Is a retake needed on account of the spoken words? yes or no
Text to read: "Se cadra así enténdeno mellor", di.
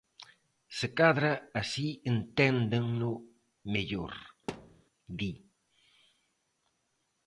no